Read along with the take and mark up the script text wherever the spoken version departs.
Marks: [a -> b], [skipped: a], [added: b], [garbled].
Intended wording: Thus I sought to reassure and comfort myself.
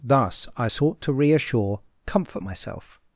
Thus I sought to reassure [skipped: and] comfort myself.